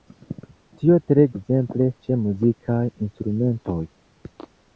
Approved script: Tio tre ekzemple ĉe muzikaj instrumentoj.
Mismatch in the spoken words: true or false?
false